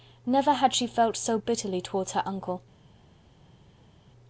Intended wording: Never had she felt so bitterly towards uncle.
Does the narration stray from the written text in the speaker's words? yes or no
yes